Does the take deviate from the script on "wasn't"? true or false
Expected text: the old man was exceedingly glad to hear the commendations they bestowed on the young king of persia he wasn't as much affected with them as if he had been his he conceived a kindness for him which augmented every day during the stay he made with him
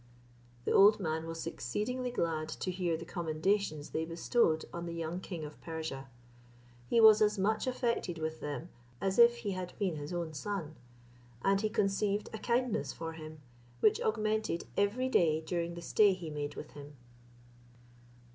true